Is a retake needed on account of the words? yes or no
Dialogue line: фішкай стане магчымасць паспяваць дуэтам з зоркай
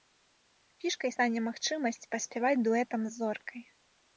no